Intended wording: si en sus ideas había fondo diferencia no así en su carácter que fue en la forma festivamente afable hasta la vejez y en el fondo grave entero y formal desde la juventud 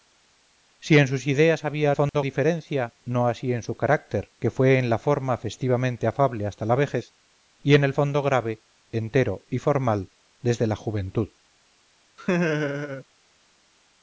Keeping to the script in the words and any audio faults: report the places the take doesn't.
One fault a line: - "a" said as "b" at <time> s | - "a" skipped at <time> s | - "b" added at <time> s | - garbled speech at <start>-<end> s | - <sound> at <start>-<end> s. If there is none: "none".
- dropout at 2.1-2.1 s
- laugh at 12.2-13.0 s